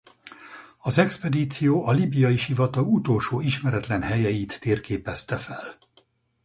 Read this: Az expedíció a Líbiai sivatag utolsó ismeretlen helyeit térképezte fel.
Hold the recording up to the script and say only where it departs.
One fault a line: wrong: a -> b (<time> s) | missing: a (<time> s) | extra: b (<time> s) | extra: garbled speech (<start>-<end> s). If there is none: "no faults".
no faults